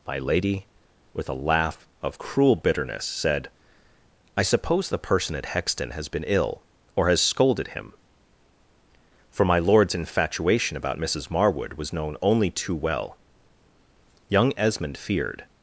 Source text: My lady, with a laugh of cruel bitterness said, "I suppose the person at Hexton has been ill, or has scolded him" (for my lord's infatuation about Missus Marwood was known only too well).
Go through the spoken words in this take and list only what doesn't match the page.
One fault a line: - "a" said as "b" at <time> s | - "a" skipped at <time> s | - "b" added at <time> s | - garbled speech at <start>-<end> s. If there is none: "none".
- "Young Esmond feared" added at 14.3 s